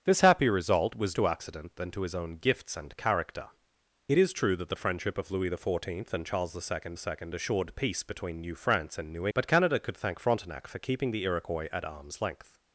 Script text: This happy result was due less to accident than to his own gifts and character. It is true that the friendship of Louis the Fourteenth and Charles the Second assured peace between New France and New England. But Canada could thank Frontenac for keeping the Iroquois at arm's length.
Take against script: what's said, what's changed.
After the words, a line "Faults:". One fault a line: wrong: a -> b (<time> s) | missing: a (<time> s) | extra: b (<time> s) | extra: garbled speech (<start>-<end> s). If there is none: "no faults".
This happy result was to accident than to his own gifts and character. It is true that the friendship of Louis the Fourteenth and Charles the Second Second assured peace between New France and New. But Canada could thank Frontenac for keeping the Iroquois at arm's length.
Faults:
missing: due less (1.1 s)
extra: Second (7.0 s)
missing: England (9.3 s)